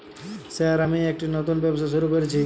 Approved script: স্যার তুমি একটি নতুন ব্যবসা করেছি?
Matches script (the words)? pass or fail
fail